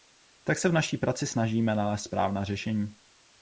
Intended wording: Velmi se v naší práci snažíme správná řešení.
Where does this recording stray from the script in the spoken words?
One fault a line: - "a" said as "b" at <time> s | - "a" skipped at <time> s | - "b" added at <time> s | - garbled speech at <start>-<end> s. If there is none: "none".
- "Velmi" said as "Tak" at 0.4 s
- "nalézt" added at 1.8 s